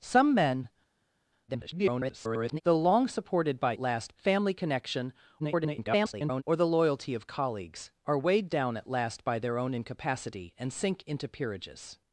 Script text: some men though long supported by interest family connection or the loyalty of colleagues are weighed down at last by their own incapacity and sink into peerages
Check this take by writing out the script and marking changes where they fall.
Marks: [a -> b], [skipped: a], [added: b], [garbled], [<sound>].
some men [garbled] though long supported by [interest -> last] family connection [garbled] or the loyalty of colleagues are weighed down at last by their own incapacity and sink into peerages